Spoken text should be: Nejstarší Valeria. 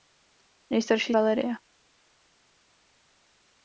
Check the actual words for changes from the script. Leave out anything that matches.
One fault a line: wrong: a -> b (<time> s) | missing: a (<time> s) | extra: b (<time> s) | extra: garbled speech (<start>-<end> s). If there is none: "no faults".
no faults